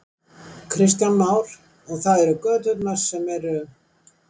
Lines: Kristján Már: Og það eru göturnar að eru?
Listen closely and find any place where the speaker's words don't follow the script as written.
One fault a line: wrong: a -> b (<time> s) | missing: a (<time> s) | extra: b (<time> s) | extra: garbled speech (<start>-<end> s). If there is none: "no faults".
wrong: að -> sem (3.0 s)